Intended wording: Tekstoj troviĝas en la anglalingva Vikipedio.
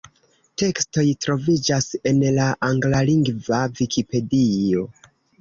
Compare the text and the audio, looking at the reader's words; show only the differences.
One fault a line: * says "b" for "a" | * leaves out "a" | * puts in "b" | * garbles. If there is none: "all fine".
all fine